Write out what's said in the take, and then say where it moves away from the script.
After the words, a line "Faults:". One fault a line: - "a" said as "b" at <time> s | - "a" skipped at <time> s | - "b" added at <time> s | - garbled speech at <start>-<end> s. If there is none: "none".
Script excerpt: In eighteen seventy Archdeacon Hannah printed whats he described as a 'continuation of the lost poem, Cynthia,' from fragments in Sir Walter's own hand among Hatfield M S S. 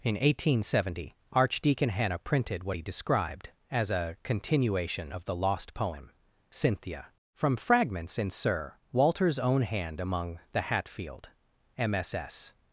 In eighteen seventy Archdeacon Hannah printed what he described as a 'continuation of the lost poem, Cynthia,' from fragments in Sir Walter's own hand among the Hatfield M S S.
Faults:
- "whats" said as "what" at 2.6 s
- "the" added at 10.5 s